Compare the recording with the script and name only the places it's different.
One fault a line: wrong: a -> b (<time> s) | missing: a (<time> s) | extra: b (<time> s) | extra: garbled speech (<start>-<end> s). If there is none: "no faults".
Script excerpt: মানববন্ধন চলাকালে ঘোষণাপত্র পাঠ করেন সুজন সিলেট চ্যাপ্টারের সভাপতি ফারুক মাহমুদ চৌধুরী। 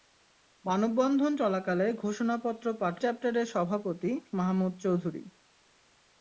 missing: করেন সুজন সিলেট (3.0 s)
missing: ফারুক (4.1 s)